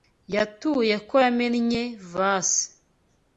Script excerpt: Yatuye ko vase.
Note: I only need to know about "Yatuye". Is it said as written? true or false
true